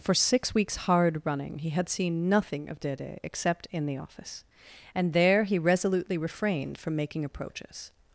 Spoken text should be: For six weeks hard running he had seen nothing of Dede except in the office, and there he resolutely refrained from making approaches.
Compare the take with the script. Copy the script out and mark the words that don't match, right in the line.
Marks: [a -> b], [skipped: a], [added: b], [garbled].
For six weeks hard running he had seen nothing of Dede except in the office, and there he resolutely refrained from making approaches.